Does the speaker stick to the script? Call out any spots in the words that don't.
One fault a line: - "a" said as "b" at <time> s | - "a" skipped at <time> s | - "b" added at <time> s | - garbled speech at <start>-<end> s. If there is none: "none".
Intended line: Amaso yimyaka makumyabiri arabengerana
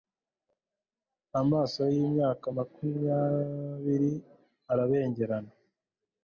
none